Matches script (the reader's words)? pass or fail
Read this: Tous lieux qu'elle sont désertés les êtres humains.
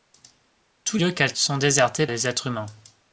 pass